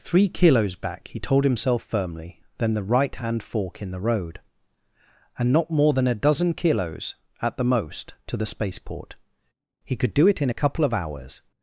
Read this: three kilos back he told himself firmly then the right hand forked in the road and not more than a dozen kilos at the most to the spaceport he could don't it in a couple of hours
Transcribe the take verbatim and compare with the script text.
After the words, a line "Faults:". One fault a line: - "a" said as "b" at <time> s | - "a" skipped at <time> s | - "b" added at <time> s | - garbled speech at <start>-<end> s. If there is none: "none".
three kilos back he told himself firmly then the right hand fork in the road and not more than a dozen kilos at the most to the spaceport he could do it in a couple of hours
Faults:
- "forked" said as "fork" at 3.4 s
- "don't" said as "do" at 10.1 s